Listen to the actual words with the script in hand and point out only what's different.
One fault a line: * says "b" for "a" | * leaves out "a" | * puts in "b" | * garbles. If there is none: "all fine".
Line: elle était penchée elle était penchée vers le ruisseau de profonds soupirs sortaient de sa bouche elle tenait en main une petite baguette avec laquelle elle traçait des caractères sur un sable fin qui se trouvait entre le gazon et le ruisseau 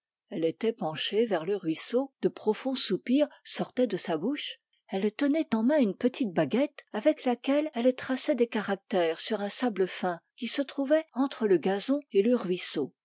* leaves out "elle était penchée"